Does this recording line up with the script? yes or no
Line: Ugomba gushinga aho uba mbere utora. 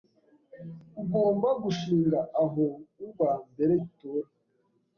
yes